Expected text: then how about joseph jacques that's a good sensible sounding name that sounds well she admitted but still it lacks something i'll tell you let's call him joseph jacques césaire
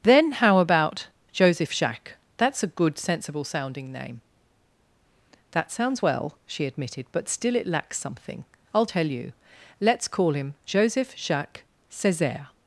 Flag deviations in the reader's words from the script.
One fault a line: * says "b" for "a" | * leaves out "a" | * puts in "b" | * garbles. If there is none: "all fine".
all fine